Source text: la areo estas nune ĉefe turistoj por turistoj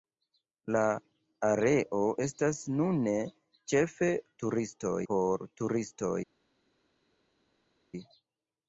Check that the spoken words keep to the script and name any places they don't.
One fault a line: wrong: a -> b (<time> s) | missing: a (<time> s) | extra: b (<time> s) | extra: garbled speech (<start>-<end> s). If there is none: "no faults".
no faults